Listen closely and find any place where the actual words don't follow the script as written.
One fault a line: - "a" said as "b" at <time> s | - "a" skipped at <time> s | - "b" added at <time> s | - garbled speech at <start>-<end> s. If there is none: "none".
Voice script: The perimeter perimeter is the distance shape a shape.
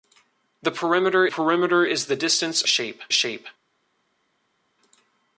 none